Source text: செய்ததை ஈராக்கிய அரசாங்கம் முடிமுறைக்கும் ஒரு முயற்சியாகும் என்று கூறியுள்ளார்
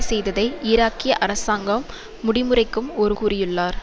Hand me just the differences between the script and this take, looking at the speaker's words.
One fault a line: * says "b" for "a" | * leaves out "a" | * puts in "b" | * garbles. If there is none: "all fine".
* leaves out "முயற்சியாகும் என்று"